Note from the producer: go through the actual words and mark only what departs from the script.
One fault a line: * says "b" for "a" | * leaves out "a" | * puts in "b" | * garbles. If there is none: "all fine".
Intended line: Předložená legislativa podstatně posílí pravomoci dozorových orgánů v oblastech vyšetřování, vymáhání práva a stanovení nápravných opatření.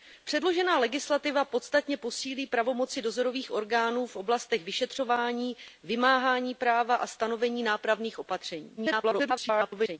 * garbles